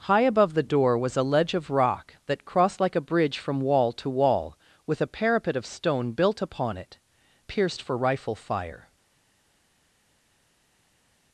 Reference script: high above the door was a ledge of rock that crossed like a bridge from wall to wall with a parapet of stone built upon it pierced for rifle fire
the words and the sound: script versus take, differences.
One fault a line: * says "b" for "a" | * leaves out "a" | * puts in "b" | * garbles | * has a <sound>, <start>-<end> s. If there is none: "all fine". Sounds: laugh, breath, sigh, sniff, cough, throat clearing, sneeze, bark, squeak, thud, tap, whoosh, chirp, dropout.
all fine